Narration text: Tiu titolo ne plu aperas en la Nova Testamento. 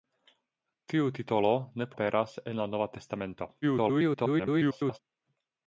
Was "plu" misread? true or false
true